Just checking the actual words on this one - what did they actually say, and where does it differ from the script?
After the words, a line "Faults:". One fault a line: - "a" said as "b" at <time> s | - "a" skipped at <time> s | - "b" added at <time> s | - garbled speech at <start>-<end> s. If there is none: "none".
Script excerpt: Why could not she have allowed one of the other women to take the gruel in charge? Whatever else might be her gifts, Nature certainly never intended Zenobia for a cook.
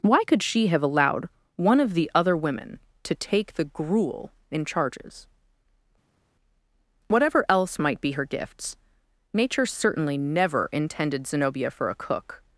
Why could she have allowed one of the other women to take the gruel in charges? Whatever else might be her gifts, Nature certainly never intended Zenobia for a cook.
Faults:
- "not" skipped at 0.4 s
- "charge" said as "charges" at 4.7 s